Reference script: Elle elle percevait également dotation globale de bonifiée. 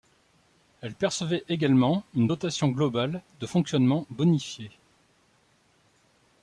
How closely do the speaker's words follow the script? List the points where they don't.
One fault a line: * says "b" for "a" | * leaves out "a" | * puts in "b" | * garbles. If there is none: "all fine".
* leaves out "elle"
* puts in "une"
* puts in "fonctionnement"